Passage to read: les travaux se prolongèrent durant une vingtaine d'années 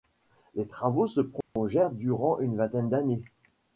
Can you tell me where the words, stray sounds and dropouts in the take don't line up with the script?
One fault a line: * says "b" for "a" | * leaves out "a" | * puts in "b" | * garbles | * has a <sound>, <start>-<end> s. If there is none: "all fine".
* has a dropout, 1.4-1.6 s